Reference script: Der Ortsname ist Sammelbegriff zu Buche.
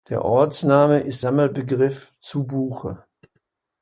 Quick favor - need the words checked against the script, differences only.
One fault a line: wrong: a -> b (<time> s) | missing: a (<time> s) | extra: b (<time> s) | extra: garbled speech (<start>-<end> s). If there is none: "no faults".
no faults